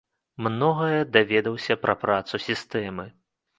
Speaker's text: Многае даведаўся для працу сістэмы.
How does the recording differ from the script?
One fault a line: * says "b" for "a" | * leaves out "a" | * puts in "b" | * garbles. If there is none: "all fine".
* says "пра" for "для"